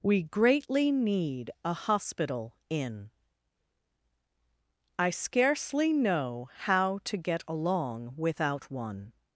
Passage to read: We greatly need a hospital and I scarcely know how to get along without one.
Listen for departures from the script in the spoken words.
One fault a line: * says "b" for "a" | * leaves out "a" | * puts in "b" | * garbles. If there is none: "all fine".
* says "in" for "and"